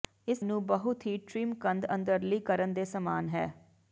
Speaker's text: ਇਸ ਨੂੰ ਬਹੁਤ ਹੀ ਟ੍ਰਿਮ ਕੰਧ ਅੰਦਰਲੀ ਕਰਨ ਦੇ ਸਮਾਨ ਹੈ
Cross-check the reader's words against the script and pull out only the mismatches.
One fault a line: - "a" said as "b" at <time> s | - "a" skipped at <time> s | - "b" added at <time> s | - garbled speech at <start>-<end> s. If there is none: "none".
none